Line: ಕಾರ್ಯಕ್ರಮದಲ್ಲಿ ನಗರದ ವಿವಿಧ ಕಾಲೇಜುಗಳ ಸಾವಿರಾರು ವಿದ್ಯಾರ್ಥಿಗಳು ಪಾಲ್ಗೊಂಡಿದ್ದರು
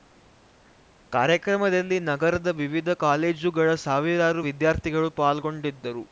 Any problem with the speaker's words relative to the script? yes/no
no